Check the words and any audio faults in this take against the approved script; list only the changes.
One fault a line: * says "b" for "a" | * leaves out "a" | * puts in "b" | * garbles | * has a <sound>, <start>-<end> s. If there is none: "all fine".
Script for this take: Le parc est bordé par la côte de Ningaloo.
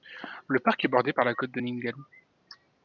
all fine